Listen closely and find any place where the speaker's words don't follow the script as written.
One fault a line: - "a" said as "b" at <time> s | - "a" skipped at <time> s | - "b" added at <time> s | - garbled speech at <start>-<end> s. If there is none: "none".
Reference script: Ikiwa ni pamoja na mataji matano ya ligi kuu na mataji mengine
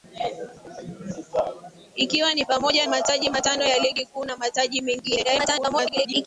- "na" skipped at 2.9 s
- garbled speech at 5.2-6.3 s